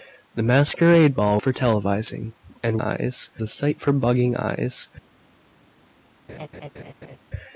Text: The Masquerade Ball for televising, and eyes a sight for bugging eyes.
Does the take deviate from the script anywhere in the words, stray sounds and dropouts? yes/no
yes